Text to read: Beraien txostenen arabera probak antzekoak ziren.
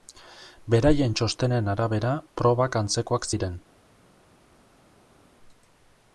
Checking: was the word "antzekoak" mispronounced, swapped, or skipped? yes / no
no